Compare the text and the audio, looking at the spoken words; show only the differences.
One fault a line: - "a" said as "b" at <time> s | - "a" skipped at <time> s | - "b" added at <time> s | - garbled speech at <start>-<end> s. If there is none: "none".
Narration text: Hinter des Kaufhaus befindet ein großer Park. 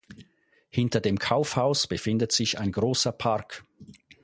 - "des" said as "dem" at 1.0 s
- "sich" added at 2.3 s